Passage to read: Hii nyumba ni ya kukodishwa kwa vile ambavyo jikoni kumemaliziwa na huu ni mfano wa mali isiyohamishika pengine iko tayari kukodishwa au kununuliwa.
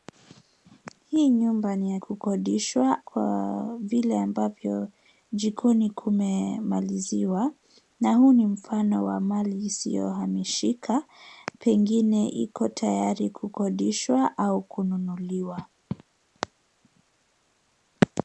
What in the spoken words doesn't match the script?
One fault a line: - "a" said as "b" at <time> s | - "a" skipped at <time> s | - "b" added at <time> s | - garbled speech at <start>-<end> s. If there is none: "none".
none